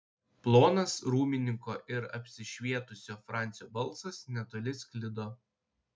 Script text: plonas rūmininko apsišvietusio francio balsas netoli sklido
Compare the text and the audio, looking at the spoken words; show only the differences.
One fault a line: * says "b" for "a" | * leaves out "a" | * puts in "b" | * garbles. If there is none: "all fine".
* puts in "ir"